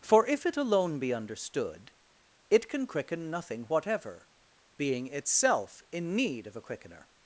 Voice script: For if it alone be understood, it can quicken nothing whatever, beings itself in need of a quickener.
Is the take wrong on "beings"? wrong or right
wrong